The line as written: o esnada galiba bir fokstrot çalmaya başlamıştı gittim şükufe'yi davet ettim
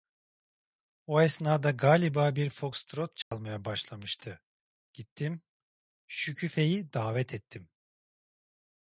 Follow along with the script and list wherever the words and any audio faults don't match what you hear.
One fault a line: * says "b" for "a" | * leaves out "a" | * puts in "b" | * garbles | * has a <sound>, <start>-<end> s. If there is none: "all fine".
* has a dropout, 3.2-3.3 s